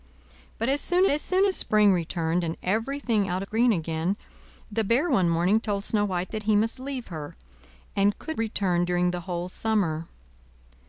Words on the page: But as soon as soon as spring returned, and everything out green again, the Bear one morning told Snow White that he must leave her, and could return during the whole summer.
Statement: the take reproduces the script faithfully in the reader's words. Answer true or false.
true